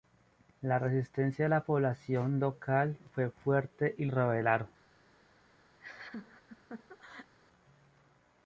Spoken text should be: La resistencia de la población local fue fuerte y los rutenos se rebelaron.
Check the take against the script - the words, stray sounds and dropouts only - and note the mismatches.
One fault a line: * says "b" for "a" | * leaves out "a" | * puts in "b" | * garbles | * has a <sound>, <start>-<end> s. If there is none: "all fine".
* leaves out "los rutenos se"
* has a laugh, 5.8-7.3 s